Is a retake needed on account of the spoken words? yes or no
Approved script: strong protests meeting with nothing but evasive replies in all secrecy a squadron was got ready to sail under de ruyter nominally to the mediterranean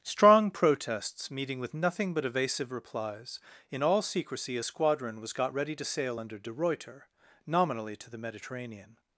no